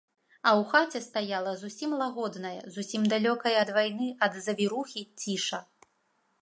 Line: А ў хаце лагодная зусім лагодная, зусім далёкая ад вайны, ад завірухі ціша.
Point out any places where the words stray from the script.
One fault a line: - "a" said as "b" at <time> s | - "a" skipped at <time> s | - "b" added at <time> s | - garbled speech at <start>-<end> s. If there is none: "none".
- "лагодная" said as "стаяла" at 1.1 s